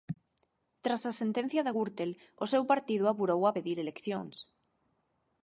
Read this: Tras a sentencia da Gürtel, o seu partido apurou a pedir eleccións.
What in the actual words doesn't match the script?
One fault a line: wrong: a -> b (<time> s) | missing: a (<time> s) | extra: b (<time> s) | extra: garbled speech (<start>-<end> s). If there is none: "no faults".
no faults